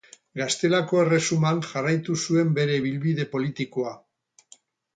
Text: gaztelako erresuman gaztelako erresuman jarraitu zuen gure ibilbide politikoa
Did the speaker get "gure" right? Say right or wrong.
wrong